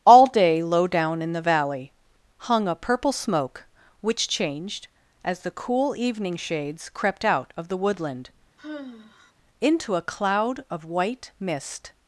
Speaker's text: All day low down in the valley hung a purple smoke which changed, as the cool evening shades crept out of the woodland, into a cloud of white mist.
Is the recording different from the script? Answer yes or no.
no